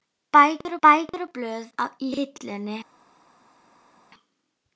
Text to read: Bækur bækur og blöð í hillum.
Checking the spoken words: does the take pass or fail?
pass